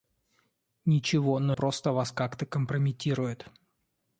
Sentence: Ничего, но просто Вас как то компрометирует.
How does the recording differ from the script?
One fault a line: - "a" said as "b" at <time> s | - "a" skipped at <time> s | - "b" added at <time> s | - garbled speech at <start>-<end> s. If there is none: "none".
none